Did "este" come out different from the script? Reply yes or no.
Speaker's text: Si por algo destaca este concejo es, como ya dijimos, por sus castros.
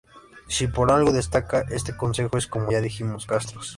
no